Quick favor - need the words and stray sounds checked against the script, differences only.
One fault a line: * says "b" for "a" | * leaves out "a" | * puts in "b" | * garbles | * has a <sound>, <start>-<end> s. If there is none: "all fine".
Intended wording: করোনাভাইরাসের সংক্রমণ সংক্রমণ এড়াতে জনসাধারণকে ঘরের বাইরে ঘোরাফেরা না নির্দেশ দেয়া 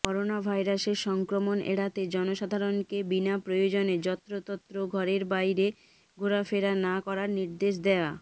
* leaves out "সংক্রমণ"
* puts in "বিনা প্রয়োজনে যত্রতত্র"
* puts in "করার"